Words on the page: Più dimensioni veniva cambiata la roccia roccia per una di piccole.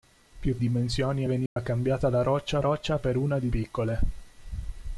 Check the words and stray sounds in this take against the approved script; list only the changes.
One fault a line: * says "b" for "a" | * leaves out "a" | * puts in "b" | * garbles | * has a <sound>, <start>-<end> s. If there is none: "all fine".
* has a dropout, 1.5-1.6 s